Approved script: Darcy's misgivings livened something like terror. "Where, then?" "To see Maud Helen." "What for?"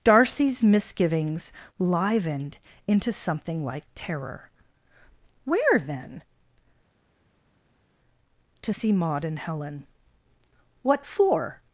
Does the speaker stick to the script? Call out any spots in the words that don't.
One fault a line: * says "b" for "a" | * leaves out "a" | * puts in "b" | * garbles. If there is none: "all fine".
* puts in "into"
* puts in "and"